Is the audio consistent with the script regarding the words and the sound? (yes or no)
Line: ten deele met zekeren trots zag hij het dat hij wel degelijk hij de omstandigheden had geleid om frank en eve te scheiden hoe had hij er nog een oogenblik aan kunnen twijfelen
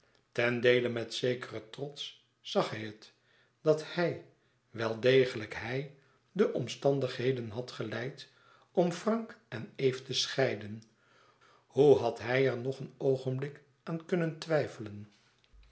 yes